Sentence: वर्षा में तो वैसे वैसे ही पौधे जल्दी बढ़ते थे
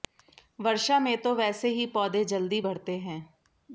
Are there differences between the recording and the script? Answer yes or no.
yes